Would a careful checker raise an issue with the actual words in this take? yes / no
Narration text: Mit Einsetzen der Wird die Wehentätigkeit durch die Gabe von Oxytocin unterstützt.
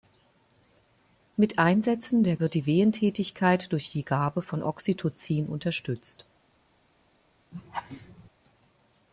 no